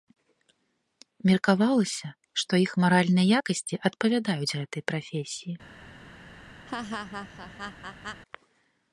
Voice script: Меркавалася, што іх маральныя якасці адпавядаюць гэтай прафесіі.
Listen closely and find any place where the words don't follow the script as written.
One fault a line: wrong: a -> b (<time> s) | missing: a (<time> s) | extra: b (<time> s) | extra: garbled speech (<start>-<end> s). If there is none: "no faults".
no faults